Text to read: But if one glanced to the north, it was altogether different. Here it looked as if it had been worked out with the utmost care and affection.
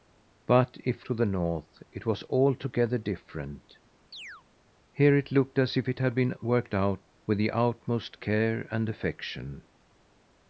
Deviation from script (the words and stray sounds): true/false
true